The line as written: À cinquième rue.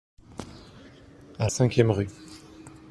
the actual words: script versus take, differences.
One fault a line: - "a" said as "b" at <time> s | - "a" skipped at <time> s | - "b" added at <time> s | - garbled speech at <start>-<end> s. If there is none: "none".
none